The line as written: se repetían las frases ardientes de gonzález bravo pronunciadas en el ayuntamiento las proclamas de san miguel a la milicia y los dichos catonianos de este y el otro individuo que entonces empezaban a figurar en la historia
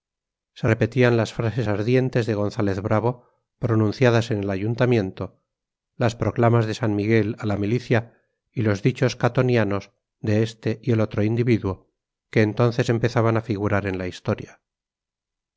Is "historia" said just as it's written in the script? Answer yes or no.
yes